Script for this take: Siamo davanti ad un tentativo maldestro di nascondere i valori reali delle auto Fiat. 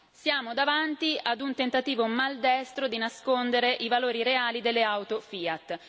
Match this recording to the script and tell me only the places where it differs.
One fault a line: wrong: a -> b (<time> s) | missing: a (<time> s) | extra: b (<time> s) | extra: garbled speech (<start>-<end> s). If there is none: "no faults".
no faults